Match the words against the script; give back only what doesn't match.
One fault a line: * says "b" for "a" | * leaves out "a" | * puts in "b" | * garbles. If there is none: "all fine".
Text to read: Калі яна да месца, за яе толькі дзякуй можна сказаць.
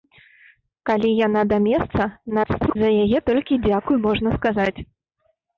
* garbles